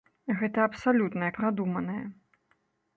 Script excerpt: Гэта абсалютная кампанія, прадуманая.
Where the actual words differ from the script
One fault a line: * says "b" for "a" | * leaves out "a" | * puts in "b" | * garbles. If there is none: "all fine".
* leaves out "кампанія"